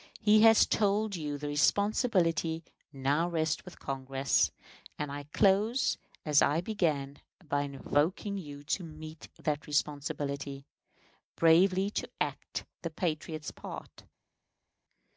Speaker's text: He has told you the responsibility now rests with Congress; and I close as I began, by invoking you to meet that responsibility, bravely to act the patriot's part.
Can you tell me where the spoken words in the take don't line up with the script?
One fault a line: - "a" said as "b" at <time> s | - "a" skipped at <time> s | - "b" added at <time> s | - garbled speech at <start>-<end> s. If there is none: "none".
none